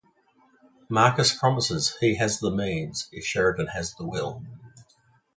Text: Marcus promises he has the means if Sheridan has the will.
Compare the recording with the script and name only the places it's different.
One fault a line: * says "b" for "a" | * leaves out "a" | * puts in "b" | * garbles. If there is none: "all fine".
all fine